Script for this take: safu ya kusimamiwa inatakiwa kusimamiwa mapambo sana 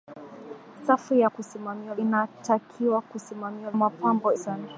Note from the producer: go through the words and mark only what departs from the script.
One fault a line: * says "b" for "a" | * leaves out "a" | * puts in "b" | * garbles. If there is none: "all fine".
all fine